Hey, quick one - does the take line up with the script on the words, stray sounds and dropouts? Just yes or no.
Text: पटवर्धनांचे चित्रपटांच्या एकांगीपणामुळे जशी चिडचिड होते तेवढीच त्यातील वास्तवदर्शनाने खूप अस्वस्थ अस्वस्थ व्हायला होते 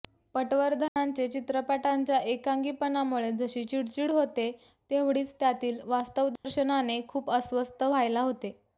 no